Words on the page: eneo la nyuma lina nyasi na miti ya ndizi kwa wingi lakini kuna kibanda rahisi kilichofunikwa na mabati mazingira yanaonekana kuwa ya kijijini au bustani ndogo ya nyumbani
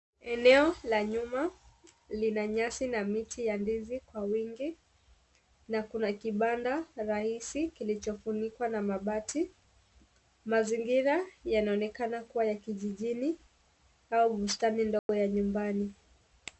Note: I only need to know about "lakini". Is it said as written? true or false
false